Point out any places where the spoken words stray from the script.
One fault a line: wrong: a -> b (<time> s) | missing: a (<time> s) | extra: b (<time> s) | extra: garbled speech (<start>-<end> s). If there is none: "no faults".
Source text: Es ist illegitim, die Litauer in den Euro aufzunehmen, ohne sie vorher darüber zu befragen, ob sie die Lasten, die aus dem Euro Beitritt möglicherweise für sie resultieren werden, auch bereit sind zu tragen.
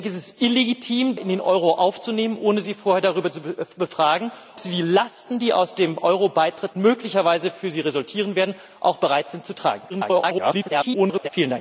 missing: die Litauer (1.1 s)
missing: ob (4.3 s)
extra: garbled speech (9.9-11.3 s)